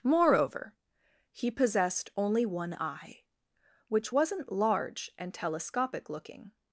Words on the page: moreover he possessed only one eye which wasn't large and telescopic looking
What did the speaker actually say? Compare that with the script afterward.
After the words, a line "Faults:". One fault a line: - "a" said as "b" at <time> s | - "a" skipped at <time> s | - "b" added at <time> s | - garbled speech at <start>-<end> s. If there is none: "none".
moreover he possessed only one eye which wasn't large and telescopic looking
Faults:
none